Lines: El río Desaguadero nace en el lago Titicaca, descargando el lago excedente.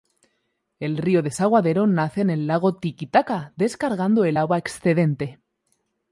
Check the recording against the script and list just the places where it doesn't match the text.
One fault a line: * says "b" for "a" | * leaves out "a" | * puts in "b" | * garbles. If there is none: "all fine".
* says "agua" for "lago"